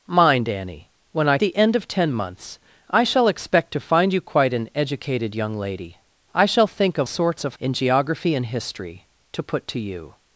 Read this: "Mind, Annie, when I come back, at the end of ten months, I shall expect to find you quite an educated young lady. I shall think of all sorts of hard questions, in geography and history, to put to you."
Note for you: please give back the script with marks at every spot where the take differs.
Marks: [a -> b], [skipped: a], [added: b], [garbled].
"Mind, Annie, when I [skipped: come back, at] the end of ten months, I shall expect to find you quite an educated young lady. I shall think of [skipped: all] sorts of [skipped: hard questions,] in geography and history, to put to you."